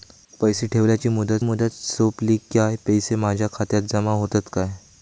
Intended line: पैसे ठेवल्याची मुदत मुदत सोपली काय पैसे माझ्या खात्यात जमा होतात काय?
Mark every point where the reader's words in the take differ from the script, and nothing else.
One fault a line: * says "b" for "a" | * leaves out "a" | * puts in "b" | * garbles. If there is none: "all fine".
all fine